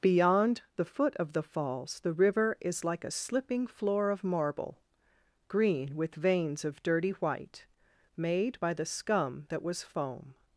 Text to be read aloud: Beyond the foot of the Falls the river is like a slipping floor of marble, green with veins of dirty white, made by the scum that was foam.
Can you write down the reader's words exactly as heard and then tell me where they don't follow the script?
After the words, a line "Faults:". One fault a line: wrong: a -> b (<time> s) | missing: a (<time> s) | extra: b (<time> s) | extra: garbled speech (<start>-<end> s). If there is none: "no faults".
Beyond the foot of the Falls the river is like a slipping floor of marble, green with veins of dirty white, made by the scum that was foam.
Faults:
no faults